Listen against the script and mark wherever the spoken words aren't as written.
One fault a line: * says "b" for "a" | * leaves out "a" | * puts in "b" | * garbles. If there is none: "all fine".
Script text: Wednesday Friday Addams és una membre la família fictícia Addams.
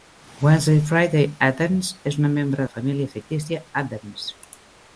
all fine